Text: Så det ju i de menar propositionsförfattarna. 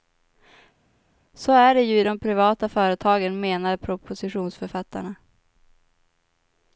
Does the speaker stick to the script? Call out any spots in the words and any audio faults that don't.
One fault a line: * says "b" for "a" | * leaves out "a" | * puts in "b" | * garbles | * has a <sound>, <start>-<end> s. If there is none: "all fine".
* puts in "är"
* puts in "privata företagen"